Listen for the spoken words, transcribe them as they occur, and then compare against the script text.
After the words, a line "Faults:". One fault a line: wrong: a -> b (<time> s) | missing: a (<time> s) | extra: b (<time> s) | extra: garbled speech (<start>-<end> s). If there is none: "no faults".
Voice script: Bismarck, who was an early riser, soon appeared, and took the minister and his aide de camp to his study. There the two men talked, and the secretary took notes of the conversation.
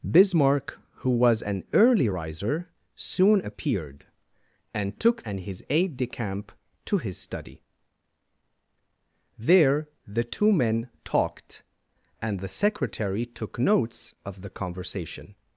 Bismarck, who was an early riser, soon appeared, and took and his aide de camp to his study. There the two men talked, and the secretary took notes of the conversation.
Faults:
missing: the minister (5.3 s)